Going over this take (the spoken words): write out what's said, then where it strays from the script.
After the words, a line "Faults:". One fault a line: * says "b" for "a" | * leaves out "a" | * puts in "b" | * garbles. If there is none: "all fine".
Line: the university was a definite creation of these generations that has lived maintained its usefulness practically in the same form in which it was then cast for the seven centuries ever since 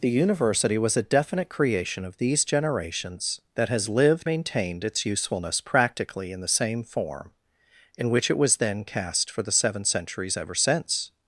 the university was a definite creation of these generations that has lived maintained its usefulness practically in the same form in which it was then cast for the seven centuries ever since
Faults:
all fine